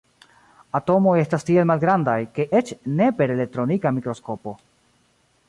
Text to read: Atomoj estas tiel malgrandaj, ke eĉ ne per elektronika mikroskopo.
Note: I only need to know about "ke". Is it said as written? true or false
true